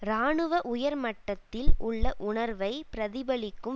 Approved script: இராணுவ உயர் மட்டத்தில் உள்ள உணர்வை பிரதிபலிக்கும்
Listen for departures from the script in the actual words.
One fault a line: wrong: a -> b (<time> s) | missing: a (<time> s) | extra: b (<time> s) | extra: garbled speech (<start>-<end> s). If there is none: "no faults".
no faults